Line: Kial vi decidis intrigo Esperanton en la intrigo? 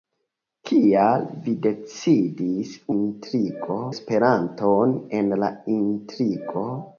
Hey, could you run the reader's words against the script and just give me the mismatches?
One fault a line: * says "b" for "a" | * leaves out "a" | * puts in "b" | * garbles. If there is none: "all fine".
all fine